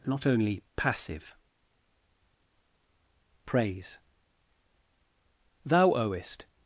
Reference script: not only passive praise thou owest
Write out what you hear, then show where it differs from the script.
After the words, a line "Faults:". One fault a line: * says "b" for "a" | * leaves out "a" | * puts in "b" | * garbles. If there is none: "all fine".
not only passive praise thou owest
Faults:
all fine